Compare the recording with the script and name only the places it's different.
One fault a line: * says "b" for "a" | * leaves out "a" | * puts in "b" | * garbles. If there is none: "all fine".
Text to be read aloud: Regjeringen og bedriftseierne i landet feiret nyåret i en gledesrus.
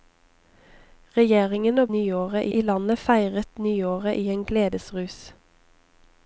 * says "nyåret" for "bedriftseierne"